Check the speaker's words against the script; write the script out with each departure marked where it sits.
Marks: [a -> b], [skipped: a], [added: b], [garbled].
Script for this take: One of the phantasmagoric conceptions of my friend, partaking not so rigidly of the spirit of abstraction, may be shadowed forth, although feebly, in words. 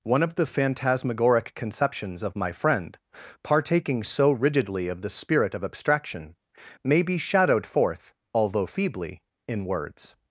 One of the phantasmagoric conceptions of my friend, partaking [skipped: not] so rigidly of the spirit of abstraction, may be shadowed forth, although feebly, in words.